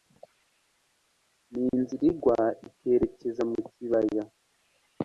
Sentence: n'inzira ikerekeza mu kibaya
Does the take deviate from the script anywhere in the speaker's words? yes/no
yes